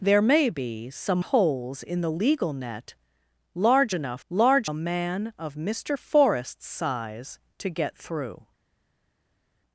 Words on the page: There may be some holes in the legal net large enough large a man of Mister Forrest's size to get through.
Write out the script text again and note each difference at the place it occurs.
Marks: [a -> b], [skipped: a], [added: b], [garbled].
There may be some holes in the legal net large enough large a man of Mister Forrest's size to get through.